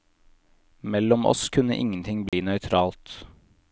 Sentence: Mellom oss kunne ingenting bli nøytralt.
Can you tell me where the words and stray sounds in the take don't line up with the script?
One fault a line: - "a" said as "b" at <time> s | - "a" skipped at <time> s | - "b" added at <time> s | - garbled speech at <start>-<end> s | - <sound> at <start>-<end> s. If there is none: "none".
- dropout at 2.3-2.3 s